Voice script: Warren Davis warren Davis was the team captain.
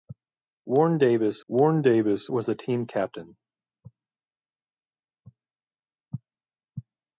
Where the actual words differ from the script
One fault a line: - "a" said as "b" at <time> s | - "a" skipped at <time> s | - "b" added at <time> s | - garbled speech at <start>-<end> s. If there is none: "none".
none